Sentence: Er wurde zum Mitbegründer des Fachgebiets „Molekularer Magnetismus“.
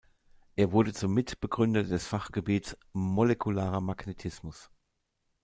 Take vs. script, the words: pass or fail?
pass